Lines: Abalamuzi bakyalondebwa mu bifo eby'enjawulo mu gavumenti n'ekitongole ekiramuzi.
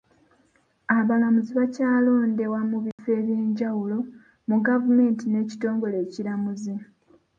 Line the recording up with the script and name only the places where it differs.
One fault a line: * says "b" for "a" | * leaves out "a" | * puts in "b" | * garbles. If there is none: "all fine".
all fine